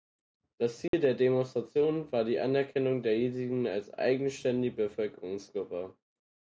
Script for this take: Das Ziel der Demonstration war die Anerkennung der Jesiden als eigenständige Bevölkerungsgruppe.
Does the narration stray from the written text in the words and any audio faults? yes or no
yes